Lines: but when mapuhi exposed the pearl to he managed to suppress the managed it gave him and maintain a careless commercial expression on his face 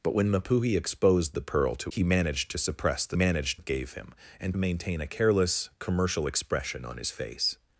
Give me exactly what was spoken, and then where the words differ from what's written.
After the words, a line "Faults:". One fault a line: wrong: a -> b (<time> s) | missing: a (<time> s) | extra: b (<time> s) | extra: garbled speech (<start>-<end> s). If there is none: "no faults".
but when mapuhi exposed the pearl to he managed to suppress the managed it gave him and maintain a careless commercial expression on his face
Faults:
no faults